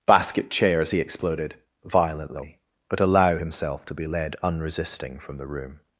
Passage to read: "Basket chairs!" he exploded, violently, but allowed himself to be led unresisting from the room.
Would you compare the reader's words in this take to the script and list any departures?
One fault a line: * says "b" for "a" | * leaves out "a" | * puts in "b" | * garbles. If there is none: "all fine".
* says "allow" for "allowed"